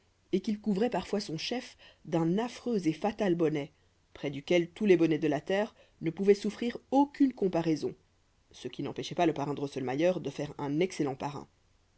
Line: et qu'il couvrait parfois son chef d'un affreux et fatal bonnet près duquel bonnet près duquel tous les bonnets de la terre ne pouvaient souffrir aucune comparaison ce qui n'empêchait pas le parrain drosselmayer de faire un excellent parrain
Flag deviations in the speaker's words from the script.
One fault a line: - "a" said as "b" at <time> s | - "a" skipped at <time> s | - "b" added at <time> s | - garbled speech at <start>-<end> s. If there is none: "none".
- "bonnet près duquel" skipped at 4.7 s